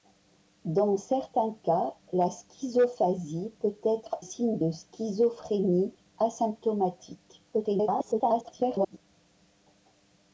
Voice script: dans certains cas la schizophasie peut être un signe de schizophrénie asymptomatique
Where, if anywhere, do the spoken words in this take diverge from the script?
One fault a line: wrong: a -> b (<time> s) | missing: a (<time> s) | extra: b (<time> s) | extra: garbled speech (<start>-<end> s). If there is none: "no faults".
missing: un (4.2 s)
extra: garbled speech (7.5-9.0 s)